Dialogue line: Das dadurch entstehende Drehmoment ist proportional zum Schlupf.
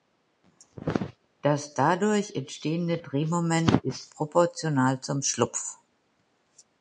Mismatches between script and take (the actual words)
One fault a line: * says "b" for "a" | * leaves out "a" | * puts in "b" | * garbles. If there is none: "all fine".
all fine